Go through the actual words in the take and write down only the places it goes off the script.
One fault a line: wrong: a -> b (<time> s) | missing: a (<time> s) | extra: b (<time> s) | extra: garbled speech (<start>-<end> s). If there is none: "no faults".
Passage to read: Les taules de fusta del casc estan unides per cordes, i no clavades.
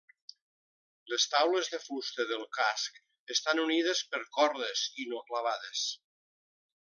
no faults